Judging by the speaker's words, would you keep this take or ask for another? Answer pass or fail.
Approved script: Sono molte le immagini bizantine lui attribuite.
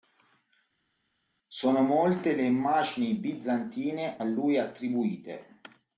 pass